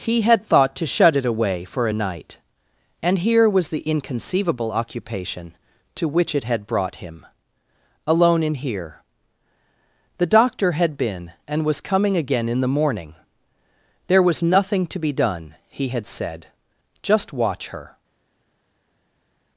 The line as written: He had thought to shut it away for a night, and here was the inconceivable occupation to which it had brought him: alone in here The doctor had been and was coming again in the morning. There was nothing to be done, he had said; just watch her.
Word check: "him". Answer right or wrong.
right